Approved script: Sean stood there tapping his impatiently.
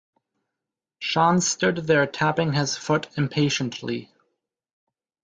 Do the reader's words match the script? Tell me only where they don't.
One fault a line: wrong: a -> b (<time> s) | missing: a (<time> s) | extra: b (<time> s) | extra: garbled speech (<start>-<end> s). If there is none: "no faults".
extra: foot (2.8 s)